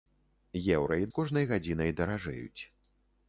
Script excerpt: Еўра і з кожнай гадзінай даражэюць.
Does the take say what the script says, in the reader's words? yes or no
yes